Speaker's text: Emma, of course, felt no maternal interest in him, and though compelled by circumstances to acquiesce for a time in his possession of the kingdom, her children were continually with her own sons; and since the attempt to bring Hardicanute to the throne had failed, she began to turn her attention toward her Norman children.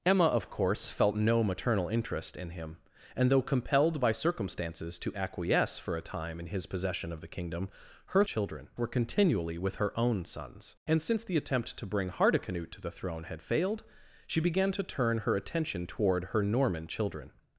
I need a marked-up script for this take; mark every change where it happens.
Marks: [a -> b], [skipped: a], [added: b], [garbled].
Emma, of course, felt no maternal interest in him, and though compelled by circumstances to acquiesce for a time in his possession of the kingdom, her children were continually with her own sons; and since the attempt to bring Hardicanute to the throne had failed, she began to turn her attention toward her Norman children.